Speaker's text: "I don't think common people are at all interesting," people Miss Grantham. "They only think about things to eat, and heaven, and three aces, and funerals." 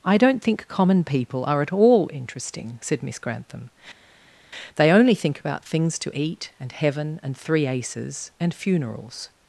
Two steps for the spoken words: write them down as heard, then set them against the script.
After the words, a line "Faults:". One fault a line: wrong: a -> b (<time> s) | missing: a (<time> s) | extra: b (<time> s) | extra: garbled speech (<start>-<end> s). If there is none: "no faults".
"I don't think common people are at all interesting," said Miss Grantham. "They only think about things to eat, and heaven, and three aces, and funerals."
Faults:
wrong: people -> said (2.8 s)